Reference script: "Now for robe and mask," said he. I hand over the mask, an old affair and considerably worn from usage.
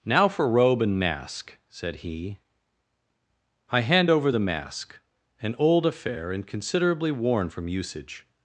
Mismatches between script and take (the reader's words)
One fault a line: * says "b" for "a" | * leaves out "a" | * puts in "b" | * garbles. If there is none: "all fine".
all fine